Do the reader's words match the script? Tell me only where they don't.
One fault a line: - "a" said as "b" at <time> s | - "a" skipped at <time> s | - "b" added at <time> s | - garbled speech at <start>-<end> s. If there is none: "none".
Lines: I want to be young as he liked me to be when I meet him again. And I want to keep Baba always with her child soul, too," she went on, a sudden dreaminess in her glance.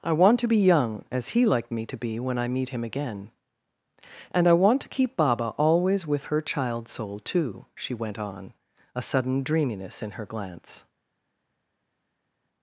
none